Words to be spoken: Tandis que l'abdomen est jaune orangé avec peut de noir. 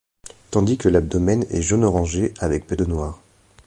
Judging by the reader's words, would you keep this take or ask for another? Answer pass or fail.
pass